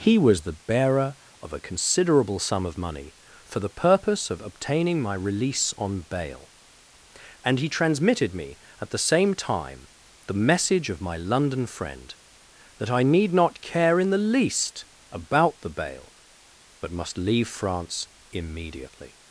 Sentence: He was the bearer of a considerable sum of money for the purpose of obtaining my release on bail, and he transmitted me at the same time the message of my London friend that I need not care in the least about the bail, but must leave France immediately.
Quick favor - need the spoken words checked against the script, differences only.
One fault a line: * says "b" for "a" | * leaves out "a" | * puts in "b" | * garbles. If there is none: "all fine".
all fine